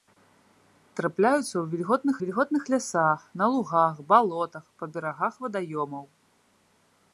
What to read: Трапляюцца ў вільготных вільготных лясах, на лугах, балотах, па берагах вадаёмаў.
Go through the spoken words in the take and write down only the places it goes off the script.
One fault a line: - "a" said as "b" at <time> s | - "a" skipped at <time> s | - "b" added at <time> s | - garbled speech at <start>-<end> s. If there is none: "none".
none